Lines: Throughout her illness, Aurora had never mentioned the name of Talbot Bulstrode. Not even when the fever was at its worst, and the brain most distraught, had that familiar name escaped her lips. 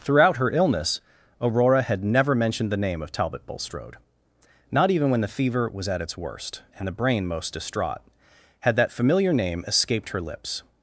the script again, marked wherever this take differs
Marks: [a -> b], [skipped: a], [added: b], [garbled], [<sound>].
Throughout her illness, Aurora had never mentioned the name of Talbot Bulstrode. Not even when the fever was at its worst, and the brain most distraught, had that familiar name escaped her lips.